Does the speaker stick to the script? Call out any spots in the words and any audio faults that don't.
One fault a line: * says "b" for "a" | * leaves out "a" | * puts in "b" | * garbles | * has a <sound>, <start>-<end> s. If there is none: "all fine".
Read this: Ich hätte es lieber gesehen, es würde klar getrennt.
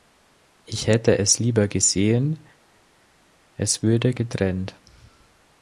* leaves out "klar"